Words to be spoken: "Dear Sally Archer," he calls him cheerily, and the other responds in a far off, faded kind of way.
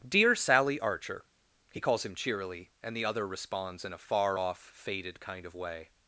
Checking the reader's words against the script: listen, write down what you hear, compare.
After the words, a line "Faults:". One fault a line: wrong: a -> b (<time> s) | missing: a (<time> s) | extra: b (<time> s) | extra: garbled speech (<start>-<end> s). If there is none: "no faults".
"Dear Sally Archer," he calls him cheerily, and the other responds in a far off, faded kind of way.
Faults:
no faults